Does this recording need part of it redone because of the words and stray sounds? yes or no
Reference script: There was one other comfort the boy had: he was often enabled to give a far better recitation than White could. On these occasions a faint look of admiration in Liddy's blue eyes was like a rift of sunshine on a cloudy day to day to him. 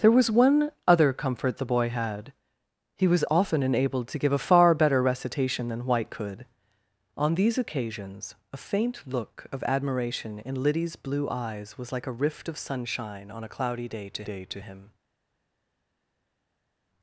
no